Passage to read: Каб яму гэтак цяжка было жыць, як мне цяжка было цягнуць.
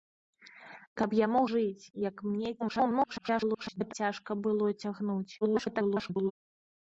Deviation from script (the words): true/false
true